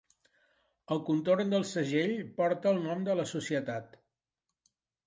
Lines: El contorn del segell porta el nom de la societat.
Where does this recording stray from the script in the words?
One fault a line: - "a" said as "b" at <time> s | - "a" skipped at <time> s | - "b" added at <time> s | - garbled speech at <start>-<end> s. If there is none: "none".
none